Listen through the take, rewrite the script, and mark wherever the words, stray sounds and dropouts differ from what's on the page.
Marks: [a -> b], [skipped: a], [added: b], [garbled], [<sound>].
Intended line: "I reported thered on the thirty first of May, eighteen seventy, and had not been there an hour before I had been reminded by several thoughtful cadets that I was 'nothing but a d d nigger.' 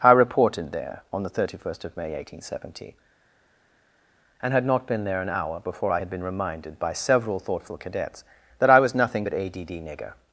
"I reported [thered -> there] on the thirty first of May, eighteen seventy, and had not been there an hour before I had been reminded by several thoughtful cadets that I was 'nothing but a d d nigger.'